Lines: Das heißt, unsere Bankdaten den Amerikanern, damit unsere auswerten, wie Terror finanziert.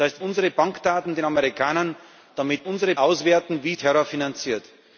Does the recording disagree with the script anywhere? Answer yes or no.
no